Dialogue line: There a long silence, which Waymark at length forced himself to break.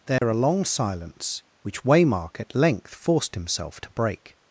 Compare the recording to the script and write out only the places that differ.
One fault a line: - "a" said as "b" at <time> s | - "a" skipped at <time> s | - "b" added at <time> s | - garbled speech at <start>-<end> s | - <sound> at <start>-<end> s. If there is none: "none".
- dropout at 0.2-0.2 s